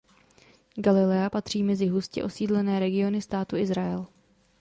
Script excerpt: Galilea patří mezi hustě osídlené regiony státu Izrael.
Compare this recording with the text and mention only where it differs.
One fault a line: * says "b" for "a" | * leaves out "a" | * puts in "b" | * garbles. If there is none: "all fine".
all fine